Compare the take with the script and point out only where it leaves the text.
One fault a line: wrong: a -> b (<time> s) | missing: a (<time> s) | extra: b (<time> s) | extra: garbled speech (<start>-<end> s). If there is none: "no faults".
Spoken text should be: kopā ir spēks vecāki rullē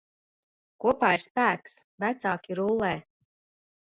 no faults